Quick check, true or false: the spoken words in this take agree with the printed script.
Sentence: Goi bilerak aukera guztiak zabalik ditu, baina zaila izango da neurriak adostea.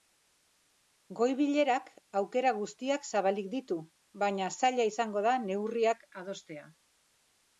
true